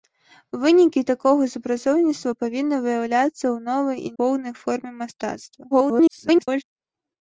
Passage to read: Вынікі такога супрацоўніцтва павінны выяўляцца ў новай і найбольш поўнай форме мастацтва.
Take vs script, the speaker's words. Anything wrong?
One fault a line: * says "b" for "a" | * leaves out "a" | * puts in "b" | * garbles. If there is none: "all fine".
* leaves out "найбольш"
* garbles